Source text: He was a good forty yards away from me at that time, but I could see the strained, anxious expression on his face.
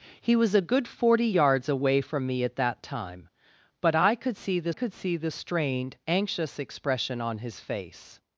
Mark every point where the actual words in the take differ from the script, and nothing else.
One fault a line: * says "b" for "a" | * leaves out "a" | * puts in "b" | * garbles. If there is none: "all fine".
* puts in "could see the"